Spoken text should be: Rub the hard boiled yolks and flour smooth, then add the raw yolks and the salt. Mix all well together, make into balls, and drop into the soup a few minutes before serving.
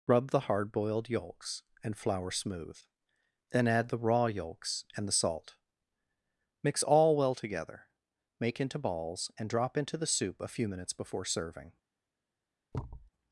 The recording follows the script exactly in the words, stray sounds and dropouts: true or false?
false